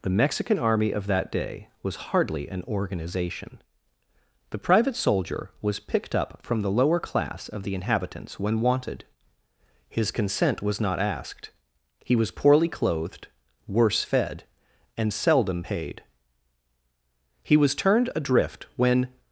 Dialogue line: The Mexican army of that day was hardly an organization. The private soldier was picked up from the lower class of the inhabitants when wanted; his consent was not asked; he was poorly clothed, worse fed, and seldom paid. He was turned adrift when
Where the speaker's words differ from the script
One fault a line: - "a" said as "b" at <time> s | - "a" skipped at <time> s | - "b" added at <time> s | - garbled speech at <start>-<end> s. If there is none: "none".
none